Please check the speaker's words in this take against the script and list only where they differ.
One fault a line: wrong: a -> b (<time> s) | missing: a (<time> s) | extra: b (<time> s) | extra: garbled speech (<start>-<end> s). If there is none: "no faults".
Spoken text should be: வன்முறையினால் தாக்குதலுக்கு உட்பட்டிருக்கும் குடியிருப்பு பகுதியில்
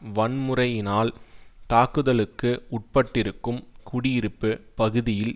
no faults